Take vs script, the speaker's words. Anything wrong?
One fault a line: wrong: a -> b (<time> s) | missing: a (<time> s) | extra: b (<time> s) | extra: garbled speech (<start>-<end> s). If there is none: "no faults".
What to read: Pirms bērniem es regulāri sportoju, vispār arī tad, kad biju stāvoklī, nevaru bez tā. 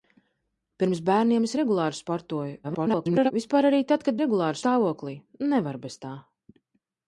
extra: garbled speech (2.6-3.3 s)
wrong: biju -> regulāri (4.2 s)